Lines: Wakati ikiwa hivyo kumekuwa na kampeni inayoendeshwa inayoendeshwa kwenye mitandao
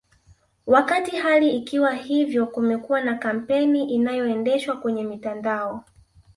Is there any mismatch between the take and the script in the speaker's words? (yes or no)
yes